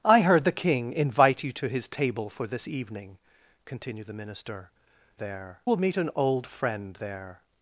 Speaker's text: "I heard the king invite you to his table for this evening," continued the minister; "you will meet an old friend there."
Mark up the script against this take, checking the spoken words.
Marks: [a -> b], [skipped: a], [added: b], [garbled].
"I heard the king invite you to his table for this evening," continued the minister; ["you -> there] will meet an old friend there."